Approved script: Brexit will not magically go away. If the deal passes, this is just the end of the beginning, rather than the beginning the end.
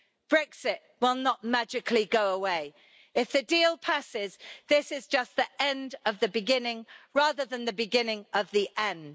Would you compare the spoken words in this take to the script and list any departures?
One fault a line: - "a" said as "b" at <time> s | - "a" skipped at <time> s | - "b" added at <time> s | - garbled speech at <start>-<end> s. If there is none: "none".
- "of" added at 8.3 s